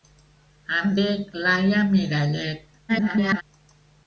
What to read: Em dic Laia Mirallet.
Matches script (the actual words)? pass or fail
fail